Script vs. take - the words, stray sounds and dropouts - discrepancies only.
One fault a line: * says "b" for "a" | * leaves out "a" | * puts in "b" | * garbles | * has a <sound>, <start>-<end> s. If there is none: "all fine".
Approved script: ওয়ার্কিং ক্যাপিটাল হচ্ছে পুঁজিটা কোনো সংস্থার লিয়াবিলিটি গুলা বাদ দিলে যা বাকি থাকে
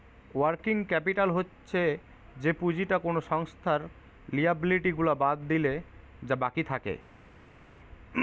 * puts in "যে"